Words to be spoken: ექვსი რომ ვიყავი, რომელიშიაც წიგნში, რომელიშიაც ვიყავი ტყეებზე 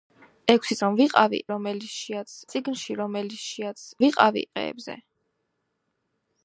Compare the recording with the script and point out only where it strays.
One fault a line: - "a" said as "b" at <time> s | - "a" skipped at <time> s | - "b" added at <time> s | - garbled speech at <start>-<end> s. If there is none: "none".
none